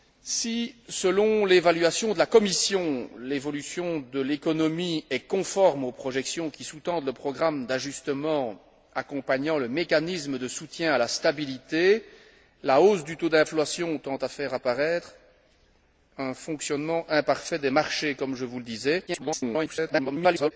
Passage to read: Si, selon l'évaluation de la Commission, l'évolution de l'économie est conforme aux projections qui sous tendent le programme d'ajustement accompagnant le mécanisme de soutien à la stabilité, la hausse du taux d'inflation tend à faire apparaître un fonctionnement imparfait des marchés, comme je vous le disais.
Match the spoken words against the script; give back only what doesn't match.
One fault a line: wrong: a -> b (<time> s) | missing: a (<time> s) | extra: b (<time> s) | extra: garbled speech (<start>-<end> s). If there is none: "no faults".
extra: garbled speech (19.1-20.5 s)